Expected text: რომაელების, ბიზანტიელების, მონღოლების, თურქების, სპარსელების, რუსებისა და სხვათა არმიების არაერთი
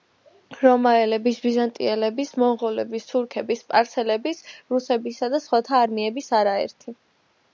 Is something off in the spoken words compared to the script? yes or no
no